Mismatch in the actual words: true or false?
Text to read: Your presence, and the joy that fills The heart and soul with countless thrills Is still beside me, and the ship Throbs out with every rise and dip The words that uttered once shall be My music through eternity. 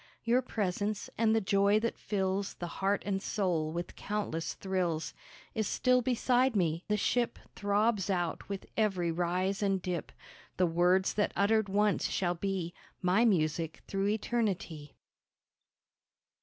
true